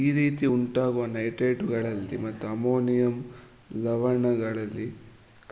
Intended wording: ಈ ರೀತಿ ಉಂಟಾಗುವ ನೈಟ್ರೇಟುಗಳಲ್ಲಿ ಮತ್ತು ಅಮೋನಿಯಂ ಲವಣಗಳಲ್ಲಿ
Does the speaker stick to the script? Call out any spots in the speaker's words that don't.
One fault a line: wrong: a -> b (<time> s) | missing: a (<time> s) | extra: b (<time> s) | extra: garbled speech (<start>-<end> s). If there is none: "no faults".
no faults